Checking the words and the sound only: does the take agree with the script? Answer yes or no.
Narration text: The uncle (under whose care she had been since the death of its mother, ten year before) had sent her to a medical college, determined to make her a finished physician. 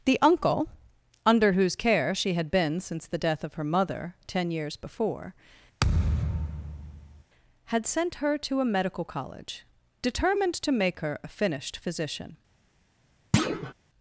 no